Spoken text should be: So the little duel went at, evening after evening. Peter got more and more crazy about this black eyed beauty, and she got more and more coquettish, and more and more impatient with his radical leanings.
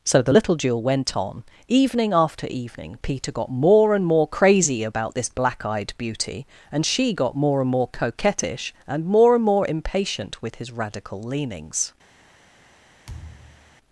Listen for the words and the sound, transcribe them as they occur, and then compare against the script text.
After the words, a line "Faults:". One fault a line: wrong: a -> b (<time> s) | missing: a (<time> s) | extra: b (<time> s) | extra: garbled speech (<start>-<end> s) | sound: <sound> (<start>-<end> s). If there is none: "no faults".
So the little duel went on, evening after evening. Peter got more and more crazy about this black eyed beauty, and she got more and more coquettish, and more and more impatient with his radical leanings.
Faults:
wrong: at -> on (1.2 s)
sound: thud (13.1-13.8 s)